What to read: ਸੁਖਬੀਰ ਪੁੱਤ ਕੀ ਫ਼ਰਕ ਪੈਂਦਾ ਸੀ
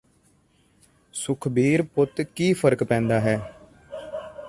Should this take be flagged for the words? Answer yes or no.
yes